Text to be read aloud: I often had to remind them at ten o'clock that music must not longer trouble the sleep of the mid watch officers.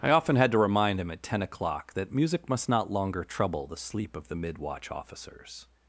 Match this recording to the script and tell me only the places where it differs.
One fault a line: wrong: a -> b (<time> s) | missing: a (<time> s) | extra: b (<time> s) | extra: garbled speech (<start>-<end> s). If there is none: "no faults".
wrong: them -> him (1.0 s)